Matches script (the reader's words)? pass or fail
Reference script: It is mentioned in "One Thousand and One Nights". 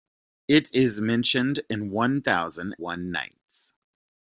fail